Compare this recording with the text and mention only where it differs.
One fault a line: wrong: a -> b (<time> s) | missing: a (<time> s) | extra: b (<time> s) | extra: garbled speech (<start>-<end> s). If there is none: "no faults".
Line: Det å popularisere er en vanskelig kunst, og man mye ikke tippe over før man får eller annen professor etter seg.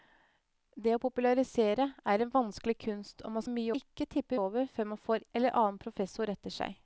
no faults